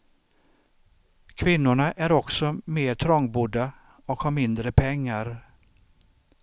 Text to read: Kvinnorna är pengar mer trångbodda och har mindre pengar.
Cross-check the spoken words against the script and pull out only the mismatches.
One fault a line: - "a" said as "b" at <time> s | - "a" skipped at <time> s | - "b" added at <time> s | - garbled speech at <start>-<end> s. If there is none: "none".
- "pengar" said as "också" at 2.1 s